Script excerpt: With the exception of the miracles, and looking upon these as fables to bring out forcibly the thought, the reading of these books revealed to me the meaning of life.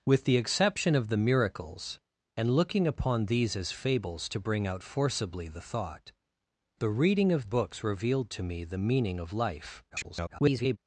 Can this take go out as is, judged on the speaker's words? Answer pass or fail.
fail